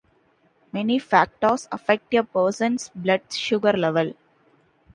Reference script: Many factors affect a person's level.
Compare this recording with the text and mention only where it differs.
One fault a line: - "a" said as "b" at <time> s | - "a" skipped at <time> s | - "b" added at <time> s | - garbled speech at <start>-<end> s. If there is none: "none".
- "blood sugar" added at 3.0 s